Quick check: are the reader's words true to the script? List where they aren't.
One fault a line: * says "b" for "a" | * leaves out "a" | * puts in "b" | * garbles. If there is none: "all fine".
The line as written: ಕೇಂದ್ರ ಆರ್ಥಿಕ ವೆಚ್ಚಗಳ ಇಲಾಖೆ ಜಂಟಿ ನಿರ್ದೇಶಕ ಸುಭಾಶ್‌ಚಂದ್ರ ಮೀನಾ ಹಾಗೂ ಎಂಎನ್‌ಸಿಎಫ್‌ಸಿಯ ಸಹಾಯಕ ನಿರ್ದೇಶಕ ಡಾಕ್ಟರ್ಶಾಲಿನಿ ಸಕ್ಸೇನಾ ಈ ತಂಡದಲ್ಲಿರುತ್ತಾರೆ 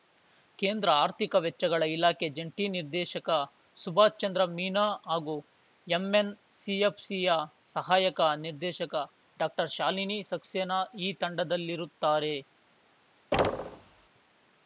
all fine